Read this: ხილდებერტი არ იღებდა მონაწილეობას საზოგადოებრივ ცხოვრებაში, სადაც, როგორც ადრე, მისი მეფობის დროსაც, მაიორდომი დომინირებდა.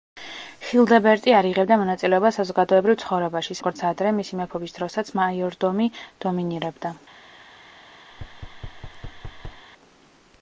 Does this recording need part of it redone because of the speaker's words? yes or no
yes